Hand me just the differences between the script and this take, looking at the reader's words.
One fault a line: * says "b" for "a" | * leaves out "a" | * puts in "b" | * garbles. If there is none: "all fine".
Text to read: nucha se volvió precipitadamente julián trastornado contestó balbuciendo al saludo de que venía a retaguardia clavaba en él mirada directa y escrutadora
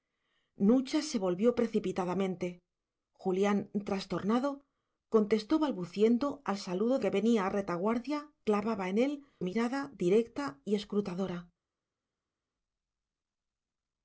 all fine